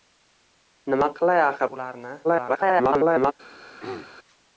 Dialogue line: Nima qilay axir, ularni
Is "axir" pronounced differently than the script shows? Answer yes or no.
no